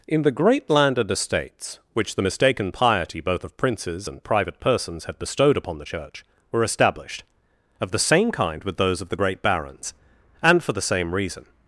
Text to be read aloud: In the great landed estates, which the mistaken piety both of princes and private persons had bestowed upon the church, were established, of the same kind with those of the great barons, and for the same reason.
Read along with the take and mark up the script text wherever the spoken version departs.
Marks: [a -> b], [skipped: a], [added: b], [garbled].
In the great landed estates, which the mistaken piety both of princes and private persons had bestowed upon the church, were established, of the same kind with those of the great barons, and for the same reason.